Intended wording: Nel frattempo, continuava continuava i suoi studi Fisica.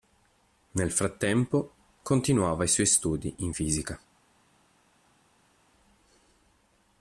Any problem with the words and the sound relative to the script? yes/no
yes